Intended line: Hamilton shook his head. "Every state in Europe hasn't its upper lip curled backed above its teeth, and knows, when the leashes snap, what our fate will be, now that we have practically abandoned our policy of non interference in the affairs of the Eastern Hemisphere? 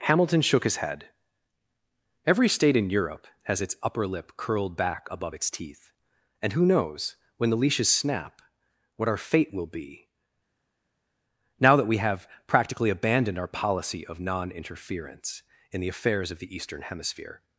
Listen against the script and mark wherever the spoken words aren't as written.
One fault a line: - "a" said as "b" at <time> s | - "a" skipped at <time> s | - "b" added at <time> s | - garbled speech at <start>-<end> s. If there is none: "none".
- "hasn't" said as "has" at 3.4 s
- "backed" said as "back" at 4.8 s
- "who" added at 6.5 s